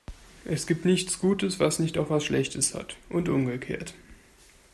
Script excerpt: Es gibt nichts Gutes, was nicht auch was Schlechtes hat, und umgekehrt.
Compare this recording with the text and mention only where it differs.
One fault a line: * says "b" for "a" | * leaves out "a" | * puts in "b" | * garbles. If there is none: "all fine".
all fine